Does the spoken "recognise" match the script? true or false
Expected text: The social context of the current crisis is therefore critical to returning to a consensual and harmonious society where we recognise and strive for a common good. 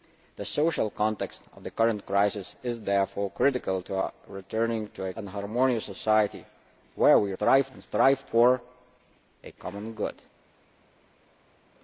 false